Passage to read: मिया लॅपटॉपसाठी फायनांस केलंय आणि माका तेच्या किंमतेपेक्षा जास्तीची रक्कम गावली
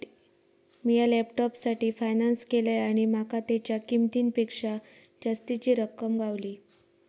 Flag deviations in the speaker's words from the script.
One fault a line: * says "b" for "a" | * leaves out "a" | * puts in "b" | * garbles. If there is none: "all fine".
all fine